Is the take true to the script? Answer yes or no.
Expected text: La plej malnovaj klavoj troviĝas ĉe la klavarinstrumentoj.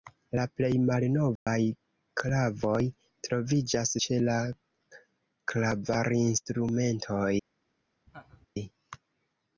yes